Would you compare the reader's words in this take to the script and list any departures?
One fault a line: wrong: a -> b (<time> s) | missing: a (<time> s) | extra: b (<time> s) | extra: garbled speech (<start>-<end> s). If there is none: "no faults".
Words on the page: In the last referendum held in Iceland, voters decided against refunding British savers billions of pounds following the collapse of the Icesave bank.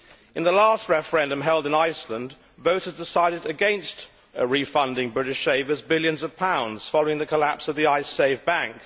no faults